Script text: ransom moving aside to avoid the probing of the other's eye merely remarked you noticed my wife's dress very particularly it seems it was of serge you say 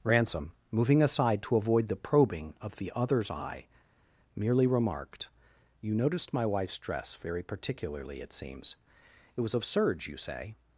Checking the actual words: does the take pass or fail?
pass